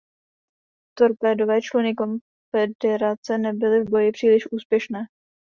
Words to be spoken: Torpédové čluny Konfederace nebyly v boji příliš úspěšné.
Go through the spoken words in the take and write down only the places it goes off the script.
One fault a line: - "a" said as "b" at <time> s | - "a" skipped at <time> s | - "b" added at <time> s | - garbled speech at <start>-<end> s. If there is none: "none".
none